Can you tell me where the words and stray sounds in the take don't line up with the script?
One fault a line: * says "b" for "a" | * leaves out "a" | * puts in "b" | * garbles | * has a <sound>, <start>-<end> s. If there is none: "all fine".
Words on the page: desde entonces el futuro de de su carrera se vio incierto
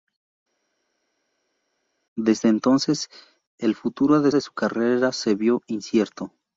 all fine